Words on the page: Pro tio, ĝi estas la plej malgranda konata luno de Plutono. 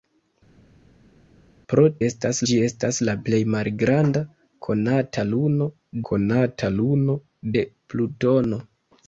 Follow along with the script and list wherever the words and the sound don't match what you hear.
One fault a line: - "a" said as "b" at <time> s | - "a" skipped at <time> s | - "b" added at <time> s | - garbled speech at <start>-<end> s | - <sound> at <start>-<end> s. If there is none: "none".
- "tio" said as "estas" at 2.1 s
- "konata luno" added at 6.1 s